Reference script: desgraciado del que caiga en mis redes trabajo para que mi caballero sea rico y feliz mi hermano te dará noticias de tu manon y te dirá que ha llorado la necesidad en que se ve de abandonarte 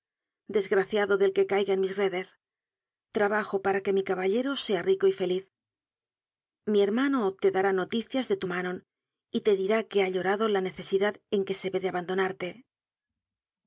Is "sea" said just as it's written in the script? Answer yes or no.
yes